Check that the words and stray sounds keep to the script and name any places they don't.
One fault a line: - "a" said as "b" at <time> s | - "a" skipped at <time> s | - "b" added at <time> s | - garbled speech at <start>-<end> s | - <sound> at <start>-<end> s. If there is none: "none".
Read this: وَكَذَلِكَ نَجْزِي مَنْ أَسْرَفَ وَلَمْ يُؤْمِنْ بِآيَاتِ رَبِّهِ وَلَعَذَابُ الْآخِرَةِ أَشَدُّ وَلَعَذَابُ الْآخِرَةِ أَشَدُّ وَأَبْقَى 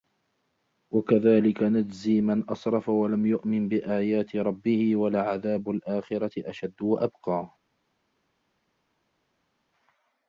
- "وَلَعَذَابُ الْآخِرَةِ أَشَدُّ" skipped at 6.8 s